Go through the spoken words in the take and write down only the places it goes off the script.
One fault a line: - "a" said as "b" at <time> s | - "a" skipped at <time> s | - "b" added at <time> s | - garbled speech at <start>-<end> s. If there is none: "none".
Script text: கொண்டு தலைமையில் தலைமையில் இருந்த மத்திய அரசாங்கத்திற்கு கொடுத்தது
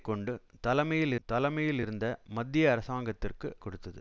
none